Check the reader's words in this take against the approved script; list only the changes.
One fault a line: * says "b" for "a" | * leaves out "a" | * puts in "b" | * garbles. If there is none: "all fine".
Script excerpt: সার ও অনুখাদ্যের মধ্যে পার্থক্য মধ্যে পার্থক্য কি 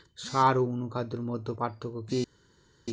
* leaves out "মধ্যে পার্থক্য"